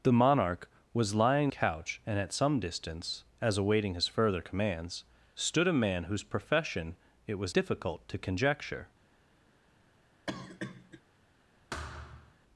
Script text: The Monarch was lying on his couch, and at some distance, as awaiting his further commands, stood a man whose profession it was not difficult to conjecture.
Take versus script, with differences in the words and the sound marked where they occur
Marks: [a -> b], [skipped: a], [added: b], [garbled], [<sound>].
The Monarch was lying [skipped: on his] couch, and at some distance, as awaiting his further commands, stood a man whose profession it was [skipped: not] difficult to conjecture. [cough] [thud]